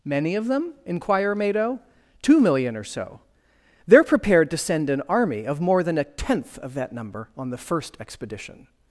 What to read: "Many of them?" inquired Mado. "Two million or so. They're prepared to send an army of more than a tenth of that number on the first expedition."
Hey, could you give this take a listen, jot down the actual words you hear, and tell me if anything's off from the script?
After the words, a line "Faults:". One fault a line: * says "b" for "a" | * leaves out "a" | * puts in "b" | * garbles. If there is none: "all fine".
"Many of them?" inquire Mado. "Two million or so. They're prepared to send an army of more than a tenth of that number on the first expedition."
Faults:
* says "inquire" for "inquired"